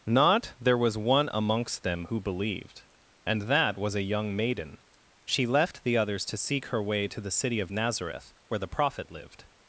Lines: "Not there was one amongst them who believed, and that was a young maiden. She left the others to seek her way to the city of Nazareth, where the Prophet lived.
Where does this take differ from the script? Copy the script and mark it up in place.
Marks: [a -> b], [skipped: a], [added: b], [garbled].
"Not there was one amongst them who believed, and that was a young maiden. She left the others to seek her way to the city of Nazareth, where the Prophet lived.